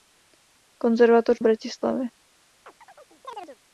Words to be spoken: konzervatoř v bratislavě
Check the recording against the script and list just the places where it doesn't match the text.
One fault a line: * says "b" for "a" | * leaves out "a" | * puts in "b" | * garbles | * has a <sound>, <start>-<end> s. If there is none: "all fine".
* has a chirp, 2.6-3.6 s